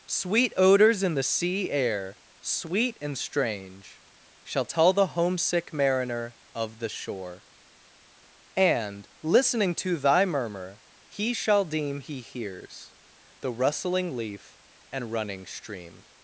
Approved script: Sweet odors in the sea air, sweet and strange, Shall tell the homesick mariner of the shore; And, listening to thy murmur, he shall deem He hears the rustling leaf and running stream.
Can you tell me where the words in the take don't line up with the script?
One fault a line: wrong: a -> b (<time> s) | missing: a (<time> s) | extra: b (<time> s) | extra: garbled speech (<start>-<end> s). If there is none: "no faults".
no faults